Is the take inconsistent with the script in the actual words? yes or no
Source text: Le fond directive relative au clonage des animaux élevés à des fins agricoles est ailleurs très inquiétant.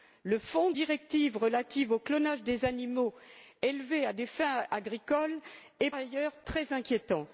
no